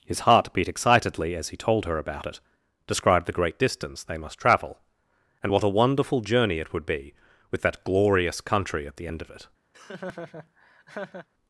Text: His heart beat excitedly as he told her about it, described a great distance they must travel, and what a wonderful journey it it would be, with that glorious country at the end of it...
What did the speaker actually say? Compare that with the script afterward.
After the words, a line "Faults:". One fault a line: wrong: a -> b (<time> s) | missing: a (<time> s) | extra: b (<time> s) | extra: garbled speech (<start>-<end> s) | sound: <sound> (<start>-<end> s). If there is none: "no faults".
His heart beat excitedly as he told her about it, described the great distance they must travel, and what a wonderful journey it would be, with that glorious country at the end of it...
Faults:
wrong: a -> the (3.3 s)
missing: it (6.7 s)
sound: laugh (9.7-11.3 s)